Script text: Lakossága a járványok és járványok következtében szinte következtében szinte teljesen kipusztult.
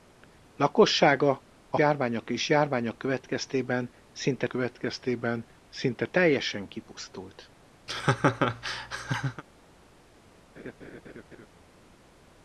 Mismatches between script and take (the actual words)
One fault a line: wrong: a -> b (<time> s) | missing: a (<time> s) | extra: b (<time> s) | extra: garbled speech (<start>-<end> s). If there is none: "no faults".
no faults